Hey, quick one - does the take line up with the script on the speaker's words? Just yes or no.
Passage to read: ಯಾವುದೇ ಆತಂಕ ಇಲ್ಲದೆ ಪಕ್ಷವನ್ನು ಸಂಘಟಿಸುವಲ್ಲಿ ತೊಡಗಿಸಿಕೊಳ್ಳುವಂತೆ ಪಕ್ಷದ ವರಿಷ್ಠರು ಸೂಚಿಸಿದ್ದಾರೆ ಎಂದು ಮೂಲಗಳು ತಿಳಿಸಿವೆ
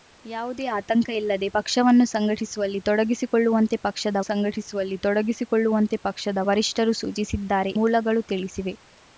no